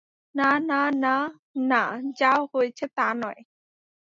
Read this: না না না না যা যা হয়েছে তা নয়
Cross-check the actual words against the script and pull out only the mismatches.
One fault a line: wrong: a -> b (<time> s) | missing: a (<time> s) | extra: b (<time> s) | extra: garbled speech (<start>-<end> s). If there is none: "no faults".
missing: যা (2.3 s)